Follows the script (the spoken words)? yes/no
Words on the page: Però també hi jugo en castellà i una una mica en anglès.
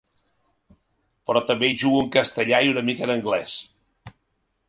no